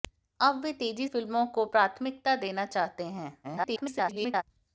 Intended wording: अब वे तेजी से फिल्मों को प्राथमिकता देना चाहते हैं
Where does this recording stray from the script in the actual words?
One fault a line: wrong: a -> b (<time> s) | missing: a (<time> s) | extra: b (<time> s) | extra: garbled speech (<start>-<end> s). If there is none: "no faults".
missing: से (1.1 s)
extra: garbled speech (3.4-4.4 s)